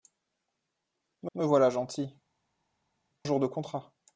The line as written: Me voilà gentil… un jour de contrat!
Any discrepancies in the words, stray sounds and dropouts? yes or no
yes